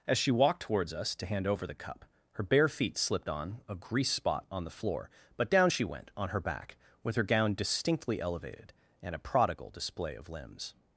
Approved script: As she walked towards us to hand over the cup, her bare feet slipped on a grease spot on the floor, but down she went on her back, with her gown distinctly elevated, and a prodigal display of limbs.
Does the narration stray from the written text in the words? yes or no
no